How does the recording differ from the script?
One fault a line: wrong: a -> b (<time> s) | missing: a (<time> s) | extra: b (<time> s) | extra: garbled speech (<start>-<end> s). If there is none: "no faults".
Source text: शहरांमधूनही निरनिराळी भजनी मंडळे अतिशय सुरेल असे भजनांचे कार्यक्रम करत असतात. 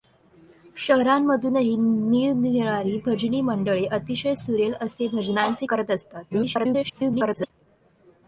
missing: कार्यक्रम (5.7 s)
extra: garbled speech (6.3-7.5 s)